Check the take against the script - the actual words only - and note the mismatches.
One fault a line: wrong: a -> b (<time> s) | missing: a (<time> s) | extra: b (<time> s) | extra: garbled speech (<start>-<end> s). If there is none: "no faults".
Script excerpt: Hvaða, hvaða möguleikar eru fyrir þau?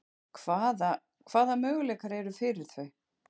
no faults